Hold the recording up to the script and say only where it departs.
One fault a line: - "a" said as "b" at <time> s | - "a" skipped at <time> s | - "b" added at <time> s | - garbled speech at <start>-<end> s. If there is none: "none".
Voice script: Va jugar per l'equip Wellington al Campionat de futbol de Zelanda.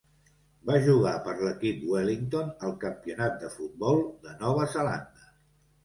- "Nova" added at 4.5 s